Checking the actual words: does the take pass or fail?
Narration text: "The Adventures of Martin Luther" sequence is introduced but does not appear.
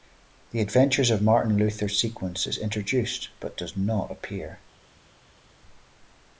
pass